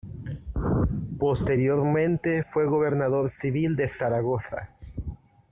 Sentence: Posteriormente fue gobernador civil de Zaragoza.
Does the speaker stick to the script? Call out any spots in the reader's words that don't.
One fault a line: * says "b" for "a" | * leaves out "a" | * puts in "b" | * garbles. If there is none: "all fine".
all fine